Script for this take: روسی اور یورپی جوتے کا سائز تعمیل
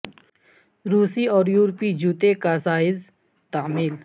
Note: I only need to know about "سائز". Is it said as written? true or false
true